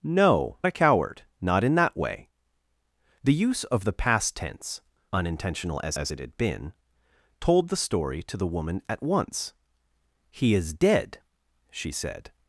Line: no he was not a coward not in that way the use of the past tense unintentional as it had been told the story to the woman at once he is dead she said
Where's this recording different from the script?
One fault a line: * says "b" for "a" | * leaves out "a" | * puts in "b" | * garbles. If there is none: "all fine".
* leaves out "he was not"
* puts in "as"